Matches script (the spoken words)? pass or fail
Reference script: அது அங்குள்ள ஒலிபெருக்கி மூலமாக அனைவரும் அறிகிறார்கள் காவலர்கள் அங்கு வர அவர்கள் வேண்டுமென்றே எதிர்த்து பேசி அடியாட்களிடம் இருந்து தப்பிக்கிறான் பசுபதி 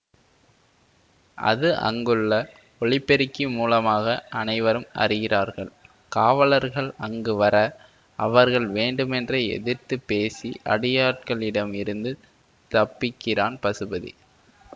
pass